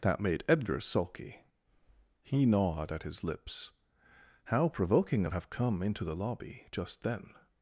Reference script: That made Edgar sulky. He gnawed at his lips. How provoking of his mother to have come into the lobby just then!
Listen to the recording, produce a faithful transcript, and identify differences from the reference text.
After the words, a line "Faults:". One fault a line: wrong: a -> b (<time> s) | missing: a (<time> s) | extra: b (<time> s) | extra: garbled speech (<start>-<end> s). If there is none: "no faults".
That made Edgar sulky. He gnawed at his lips. How provoking of have come into the lobby just then!
Faults:
missing: his mother to (5.3 s)